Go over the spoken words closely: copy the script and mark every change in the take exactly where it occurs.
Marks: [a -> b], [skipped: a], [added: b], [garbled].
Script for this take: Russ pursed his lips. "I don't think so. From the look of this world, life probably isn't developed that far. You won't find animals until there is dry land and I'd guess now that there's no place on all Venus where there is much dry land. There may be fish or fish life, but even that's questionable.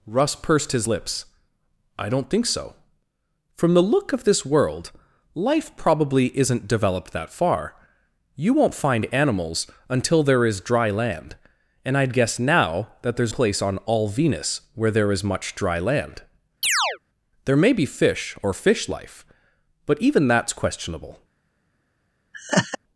Russ pursed his lips. "I don't think so. From the look of this world, life probably isn't developed that far. You won't find animals until there is dry land and I'd guess now that there's [skipped: no] place on all Venus where there is much dry land. There may be fish or fish life, but even that's questionable.